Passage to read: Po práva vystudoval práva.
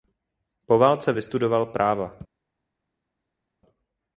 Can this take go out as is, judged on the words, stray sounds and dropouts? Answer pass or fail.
fail